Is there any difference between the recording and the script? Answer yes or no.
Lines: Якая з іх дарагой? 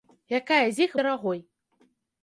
no